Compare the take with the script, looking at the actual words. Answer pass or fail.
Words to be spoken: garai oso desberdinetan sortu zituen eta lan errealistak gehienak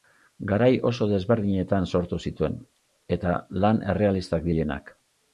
pass